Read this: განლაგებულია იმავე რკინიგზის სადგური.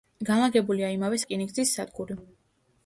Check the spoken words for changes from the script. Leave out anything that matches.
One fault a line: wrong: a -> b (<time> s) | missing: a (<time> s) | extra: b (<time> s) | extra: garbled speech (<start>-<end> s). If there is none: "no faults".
no faults